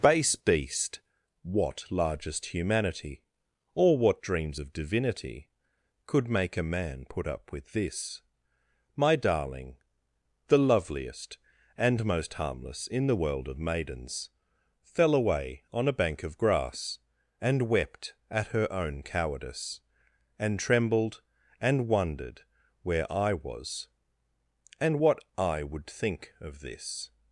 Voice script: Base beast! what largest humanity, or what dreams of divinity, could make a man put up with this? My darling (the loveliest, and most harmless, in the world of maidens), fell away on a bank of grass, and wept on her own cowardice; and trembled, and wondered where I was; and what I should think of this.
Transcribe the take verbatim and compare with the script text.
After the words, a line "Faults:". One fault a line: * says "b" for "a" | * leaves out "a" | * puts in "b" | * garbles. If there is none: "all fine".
Base beast! what largest humanity, or what dreams of divinity, could make a man put up with this? My darling (the loveliest, and most harmless, in the world of maidens), fell away on a bank of grass, and wept at her own cowardice; and trembled, and wondered where I was; and what I would think of this.
Faults:
* says "at" for "on"
* says "would" for "should"